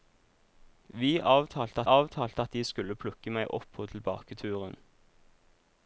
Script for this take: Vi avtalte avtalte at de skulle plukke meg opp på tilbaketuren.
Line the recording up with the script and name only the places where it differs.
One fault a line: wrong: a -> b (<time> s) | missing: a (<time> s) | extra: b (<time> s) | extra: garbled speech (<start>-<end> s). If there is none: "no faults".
no faults